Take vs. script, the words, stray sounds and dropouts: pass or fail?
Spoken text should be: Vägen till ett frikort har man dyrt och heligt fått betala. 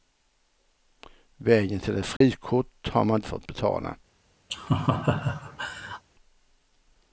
fail